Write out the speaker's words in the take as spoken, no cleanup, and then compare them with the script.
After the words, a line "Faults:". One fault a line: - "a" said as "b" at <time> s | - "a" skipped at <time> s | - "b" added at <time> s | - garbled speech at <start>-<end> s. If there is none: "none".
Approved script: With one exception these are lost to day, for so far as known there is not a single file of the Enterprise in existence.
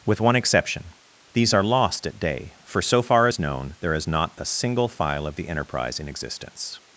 With one exception these are lost at day, for so far as known there is not a single file of the Enterprise in existence.
Faults:
- "to" said as "at" at 2.1 s